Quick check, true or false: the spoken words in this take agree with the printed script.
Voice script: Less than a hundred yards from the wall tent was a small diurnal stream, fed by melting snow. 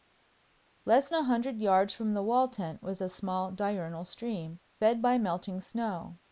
false